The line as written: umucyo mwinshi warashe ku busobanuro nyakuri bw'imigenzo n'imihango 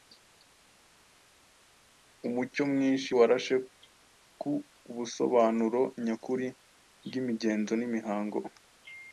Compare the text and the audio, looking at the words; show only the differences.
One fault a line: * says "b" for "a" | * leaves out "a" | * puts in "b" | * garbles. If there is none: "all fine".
all fine